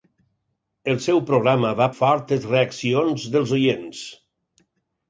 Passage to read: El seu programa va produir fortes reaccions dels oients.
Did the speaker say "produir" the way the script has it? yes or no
no